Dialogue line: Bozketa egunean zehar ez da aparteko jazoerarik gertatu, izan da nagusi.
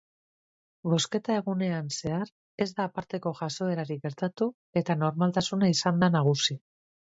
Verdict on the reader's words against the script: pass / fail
fail